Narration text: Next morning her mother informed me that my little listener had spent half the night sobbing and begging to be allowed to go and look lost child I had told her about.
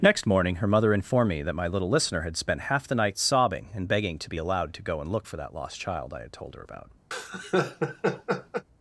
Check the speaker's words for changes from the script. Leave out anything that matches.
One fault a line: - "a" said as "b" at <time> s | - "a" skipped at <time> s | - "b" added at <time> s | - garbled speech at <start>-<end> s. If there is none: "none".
- "for that" added at 5.3 s